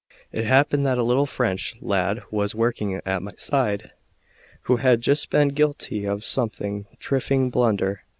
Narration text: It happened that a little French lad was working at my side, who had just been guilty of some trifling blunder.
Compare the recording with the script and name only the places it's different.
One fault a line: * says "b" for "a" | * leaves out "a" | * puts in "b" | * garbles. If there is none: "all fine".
all fine